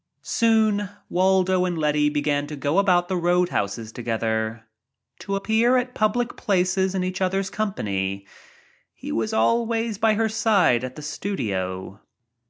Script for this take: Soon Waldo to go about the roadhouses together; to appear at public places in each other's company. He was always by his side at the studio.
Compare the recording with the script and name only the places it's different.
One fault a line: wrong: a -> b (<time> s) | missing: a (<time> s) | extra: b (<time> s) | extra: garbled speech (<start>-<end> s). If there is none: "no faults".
extra: and Letty began (1.6 s)
wrong: his -> her (10.1 s)